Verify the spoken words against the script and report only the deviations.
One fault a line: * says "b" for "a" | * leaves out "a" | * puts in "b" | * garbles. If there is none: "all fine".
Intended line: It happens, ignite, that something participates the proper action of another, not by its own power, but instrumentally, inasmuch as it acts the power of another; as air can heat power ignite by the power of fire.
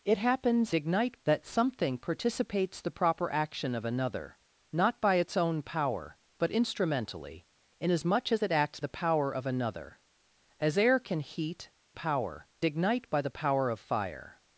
all fine